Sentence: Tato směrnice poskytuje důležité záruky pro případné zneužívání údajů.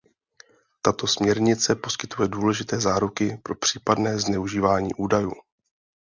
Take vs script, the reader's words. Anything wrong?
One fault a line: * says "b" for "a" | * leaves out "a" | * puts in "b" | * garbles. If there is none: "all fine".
all fine